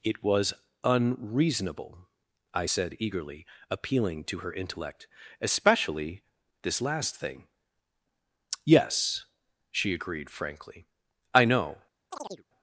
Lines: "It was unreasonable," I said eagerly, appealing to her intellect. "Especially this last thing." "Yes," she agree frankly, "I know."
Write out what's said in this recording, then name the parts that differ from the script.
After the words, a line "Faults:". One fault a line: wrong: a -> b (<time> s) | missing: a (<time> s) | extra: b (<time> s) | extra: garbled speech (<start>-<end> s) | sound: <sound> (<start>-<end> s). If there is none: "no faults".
"It was unreasonable," I said eagerly, appealing to her intellect. "Especially this last thing." "Yes," she agreed frankly, "I know."
Faults:
wrong: agree -> agreed (9.9 s)
sound: chirp (12.1-12.4 s)